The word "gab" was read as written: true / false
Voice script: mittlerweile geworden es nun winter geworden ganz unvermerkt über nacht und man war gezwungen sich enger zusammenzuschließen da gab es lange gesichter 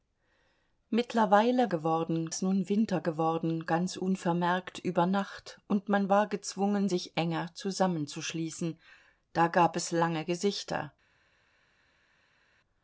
true